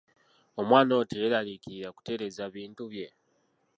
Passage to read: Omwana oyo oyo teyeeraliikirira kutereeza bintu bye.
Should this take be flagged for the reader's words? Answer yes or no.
yes